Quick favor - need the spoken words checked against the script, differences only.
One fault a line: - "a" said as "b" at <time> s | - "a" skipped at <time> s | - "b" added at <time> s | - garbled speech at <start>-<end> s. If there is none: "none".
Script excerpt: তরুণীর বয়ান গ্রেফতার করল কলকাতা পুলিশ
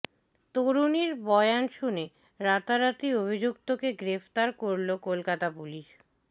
- "শুনে রাতারাতি অভিযুক্তকে" added at 1.7 s